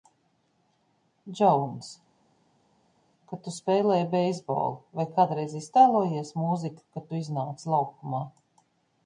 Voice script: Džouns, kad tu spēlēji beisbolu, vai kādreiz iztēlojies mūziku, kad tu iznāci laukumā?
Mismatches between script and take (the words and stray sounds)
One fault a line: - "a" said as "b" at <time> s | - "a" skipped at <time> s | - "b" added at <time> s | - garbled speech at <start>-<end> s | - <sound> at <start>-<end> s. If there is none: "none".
none